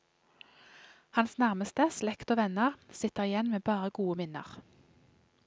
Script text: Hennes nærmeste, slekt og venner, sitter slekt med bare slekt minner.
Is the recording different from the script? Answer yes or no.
yes